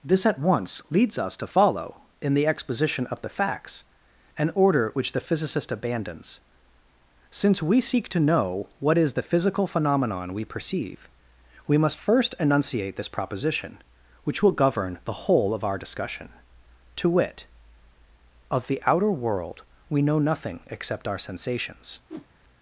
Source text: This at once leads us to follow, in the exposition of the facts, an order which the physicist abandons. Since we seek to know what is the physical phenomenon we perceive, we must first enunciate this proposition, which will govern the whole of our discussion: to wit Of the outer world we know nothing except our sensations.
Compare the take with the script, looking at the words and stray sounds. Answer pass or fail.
fail